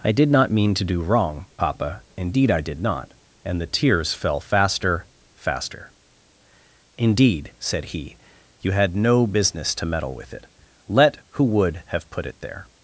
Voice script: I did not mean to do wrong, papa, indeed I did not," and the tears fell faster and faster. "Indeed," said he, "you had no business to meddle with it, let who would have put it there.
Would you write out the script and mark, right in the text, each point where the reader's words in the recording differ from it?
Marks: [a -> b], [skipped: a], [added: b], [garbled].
I did not mean to do wrong, papa, indeed I did not," and the tears fell faster [skipped: and] faster. "Indeed," said he, "you had no business to meddle with it, let who would have put it there.